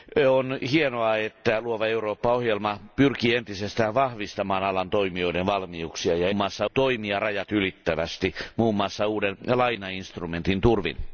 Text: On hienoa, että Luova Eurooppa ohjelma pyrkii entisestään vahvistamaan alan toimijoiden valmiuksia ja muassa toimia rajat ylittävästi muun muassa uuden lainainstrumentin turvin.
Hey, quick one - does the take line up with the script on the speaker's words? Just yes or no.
yes